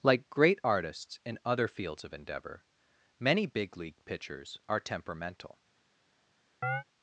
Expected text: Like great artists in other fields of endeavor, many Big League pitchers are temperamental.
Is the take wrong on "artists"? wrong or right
right